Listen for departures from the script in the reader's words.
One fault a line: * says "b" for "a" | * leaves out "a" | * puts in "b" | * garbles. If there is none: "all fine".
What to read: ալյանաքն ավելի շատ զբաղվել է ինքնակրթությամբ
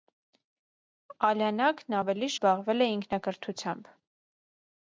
* leaves out "շատ"